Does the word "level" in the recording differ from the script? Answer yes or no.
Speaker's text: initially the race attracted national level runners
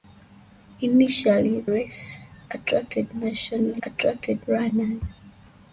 yes